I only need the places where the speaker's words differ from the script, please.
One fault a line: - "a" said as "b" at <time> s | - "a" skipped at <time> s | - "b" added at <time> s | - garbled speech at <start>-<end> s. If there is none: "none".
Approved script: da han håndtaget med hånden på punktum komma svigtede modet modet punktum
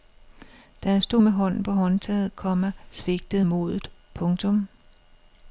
- "håndtaget" said as "stod" at 1.0 s
- "punktum" said as "håndtaget" at 1.7 s
- "modet" skipped at 3.9 s